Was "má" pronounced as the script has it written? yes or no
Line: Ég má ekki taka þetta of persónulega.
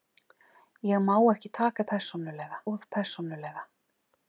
yes